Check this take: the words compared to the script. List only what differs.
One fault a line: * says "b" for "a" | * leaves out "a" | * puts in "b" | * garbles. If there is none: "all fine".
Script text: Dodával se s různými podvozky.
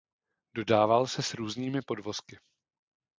all fine